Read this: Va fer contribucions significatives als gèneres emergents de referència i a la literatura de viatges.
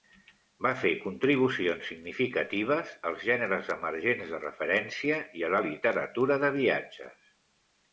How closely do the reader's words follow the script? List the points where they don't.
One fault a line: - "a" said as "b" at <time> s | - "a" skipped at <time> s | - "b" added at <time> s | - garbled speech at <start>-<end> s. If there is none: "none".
none